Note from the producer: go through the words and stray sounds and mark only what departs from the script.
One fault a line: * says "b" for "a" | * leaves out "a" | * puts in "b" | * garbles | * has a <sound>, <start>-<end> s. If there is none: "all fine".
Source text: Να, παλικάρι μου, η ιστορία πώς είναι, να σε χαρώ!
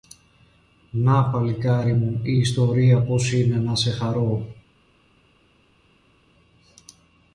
all fine